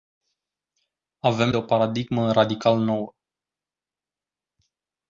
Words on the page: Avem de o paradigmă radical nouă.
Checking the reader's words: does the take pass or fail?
pass